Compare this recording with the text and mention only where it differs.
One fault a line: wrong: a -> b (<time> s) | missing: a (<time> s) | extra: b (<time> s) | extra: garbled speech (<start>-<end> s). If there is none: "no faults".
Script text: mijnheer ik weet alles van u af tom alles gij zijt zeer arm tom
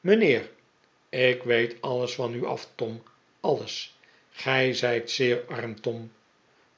no faults